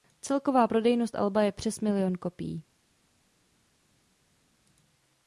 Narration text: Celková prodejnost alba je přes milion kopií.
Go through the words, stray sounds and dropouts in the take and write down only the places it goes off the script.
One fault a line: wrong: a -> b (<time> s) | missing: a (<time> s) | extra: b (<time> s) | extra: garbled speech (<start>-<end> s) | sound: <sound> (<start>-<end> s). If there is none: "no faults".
no faults